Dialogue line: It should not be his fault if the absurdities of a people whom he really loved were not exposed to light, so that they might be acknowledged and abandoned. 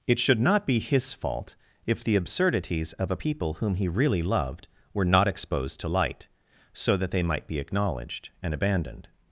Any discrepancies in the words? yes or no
no